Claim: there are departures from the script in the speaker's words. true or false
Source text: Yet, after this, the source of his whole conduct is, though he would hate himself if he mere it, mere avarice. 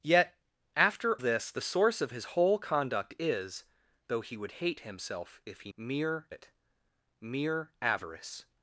false